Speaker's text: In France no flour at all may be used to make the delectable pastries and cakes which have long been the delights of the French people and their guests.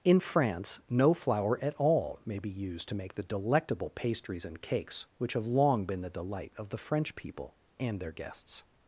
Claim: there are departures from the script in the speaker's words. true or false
true